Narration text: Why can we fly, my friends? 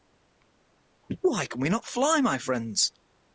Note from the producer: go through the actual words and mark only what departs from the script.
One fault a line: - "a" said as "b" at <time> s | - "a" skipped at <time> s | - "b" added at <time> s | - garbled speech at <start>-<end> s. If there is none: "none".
- "not" added at 1.7 s